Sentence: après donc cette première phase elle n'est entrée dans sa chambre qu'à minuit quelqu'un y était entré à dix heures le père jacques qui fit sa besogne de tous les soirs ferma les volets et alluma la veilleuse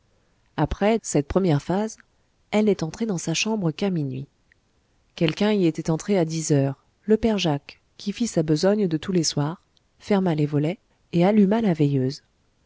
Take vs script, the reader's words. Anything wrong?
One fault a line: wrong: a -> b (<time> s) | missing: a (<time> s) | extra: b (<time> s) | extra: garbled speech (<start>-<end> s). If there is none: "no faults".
missing: donc (1.0 s)